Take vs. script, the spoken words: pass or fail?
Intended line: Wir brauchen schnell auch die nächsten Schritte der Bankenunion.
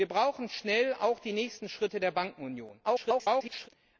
fail